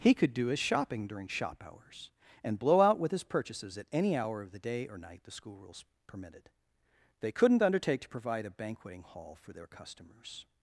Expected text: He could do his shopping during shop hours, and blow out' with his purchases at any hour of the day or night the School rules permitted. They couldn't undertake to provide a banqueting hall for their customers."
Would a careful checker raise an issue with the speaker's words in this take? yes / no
no